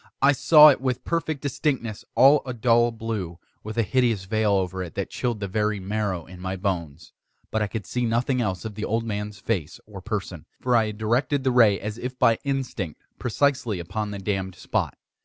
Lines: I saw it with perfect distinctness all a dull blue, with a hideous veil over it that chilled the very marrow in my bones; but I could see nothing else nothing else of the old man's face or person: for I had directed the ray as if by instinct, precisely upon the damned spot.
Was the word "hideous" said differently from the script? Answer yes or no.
no